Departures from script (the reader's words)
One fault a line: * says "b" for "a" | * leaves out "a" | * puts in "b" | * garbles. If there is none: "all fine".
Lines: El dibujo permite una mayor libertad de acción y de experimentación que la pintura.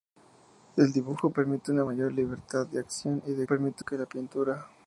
* says "permite" for "experimentación"